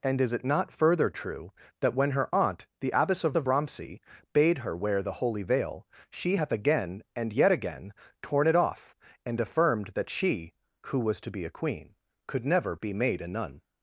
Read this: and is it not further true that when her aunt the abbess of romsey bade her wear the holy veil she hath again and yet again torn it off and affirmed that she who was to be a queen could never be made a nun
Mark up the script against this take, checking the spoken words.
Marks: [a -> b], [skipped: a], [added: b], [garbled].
and is it not further true that when her aunt the abbess of [added: of] romsey bade her wear the holy veil she hath again and yet again torn it off and affirmed that she who was to be a queen could never be made a nun